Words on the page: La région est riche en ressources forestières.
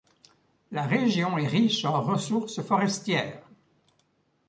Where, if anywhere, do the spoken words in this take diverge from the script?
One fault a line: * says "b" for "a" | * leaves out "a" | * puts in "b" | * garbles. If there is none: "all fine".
all fine